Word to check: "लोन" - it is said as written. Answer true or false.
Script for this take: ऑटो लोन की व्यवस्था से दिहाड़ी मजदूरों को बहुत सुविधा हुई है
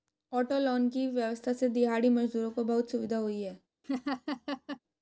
true